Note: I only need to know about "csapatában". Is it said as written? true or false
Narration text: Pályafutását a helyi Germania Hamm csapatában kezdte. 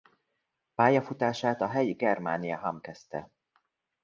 false